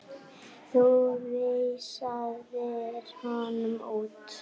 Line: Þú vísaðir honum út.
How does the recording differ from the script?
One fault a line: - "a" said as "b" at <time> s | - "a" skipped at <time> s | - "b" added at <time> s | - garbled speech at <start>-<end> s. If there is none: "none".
none